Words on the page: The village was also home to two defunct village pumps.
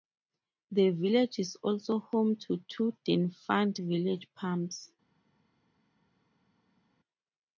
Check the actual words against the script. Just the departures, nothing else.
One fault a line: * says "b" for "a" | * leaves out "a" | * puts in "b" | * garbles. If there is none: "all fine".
* says "is" for "was"